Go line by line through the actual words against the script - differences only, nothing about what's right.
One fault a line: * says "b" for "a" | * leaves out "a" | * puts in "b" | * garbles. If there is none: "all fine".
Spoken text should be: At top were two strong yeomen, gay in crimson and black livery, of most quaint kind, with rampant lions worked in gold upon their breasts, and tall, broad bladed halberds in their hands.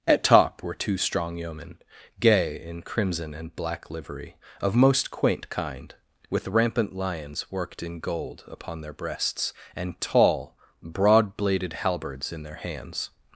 all fine